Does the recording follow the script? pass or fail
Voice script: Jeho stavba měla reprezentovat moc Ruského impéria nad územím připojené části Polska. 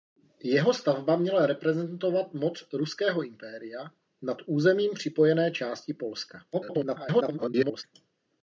fail